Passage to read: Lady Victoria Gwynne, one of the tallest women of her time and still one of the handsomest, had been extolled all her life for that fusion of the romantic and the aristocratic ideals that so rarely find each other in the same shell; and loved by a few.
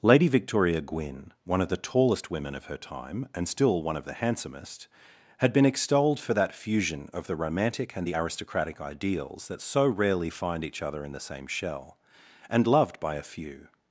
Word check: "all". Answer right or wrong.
wrong